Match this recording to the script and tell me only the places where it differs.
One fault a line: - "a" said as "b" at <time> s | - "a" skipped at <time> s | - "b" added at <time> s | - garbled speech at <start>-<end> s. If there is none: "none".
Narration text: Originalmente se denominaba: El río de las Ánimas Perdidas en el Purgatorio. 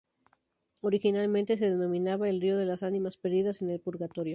none